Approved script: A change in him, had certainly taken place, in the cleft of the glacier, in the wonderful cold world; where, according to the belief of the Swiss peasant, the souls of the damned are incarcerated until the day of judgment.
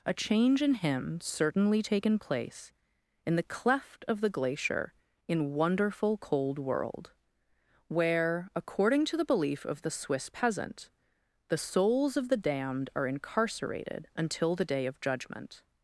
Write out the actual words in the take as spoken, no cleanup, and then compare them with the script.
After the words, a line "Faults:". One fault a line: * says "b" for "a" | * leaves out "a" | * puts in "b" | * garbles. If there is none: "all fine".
A change in him, certainly taken place, in the cleft of the glacier, in wonderful cold world; where, according to the belief of the Swiss peasant, the souls of the damned are incarcerated until the day of judgment.
Faults:
* leaves out "had"
* leaves out "the"